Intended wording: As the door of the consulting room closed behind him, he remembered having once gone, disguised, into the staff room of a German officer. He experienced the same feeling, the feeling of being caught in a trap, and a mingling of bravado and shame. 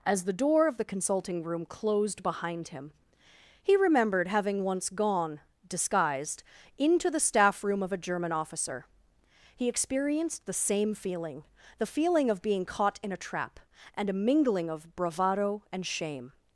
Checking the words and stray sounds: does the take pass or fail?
pass